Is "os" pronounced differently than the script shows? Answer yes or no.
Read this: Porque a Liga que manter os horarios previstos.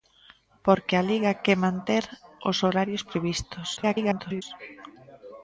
no